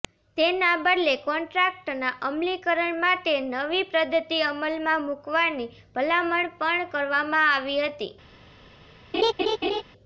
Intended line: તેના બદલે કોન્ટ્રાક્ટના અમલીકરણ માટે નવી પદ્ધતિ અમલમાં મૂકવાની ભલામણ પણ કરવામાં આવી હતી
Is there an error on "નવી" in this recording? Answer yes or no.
no